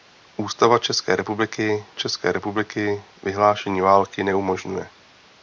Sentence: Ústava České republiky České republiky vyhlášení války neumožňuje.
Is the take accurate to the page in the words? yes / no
yes